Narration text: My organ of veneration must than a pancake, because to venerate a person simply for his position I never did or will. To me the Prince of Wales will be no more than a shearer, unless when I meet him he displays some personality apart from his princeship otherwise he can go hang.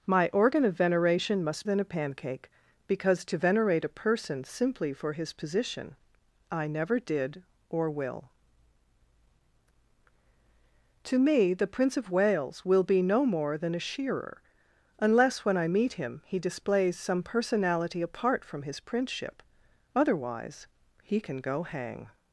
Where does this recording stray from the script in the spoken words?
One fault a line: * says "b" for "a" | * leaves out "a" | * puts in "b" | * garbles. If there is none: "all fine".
all fine